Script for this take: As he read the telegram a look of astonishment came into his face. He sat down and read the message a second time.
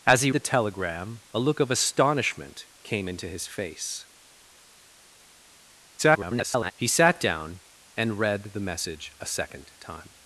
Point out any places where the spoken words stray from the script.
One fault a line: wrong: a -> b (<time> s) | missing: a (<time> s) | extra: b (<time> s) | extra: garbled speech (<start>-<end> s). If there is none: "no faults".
missing: read (0.3 s)
extra: garbled speech (6.0-6.7 s)